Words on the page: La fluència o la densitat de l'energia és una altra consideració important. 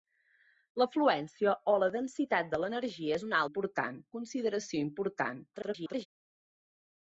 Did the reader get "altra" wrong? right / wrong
wrong